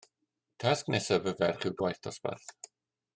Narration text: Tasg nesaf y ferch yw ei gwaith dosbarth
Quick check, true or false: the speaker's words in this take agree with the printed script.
true